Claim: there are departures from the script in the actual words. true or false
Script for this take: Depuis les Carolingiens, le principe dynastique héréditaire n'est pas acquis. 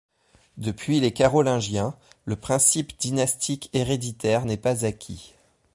false